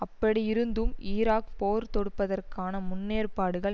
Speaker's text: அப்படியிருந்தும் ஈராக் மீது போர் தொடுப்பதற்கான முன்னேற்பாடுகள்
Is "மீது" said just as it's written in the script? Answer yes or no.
no